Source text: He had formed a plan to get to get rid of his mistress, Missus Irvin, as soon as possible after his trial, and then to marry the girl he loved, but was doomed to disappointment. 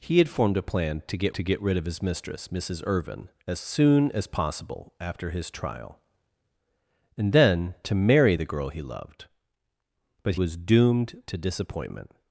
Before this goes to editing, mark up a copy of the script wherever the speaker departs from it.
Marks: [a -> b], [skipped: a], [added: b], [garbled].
He had formed a plan to get to get rid of his mistress, Missus Irvin, as soon as possible after his trial, and then to marry the girl he loved, but was doomed to disappointment.